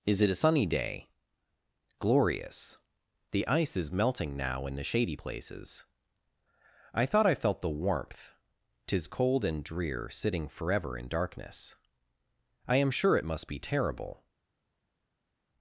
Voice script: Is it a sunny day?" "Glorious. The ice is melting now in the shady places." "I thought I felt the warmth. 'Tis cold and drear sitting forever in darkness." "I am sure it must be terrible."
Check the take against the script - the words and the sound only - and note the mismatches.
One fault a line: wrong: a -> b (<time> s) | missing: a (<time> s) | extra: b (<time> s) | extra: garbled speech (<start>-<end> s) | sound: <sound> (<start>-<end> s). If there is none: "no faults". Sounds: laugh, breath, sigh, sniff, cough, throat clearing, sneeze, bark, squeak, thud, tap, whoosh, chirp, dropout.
no faults